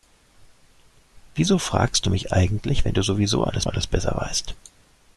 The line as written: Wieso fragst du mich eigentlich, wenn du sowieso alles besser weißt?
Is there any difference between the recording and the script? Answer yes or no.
yes